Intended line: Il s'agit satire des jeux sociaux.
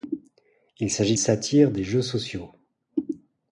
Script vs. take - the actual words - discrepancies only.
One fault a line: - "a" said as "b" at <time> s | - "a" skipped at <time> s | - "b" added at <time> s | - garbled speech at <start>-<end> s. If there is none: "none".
none